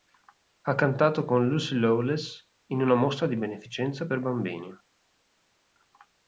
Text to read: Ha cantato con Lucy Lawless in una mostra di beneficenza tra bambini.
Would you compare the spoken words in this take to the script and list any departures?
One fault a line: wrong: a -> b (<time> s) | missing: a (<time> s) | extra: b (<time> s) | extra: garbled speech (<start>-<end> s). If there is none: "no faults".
wrong: tra -> per (4.0 s)